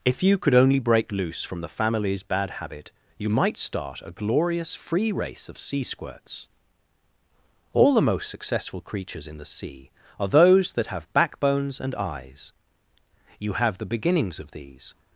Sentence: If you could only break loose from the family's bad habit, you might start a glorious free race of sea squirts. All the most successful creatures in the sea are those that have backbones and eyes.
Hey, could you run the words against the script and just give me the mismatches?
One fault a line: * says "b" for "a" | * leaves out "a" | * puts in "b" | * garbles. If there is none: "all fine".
* puts in "You have the beginnings of these"